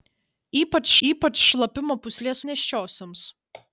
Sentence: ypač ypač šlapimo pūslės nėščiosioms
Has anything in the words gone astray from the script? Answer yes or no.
no